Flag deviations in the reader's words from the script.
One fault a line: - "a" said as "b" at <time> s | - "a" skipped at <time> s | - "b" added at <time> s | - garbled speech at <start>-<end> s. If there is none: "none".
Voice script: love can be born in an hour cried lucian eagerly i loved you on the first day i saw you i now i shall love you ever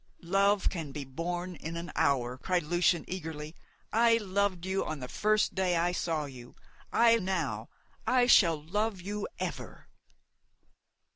none